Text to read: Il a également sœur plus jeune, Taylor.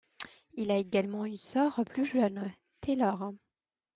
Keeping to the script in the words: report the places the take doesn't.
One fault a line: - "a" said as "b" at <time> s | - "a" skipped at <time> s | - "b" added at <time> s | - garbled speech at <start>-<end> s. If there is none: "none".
- "une" added at 1.2 s